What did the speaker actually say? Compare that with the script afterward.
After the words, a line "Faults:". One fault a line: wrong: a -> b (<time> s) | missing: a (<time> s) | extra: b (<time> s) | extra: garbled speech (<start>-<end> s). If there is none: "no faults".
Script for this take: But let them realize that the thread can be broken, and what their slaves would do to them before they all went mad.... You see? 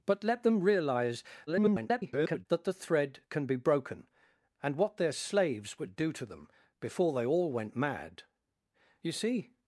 But let them realize [garbled] that the thread can be broken, and what their slaves would do to them before they all went mad.... You see?
Faults:
extra: garbled speech (1.5-2.5 s)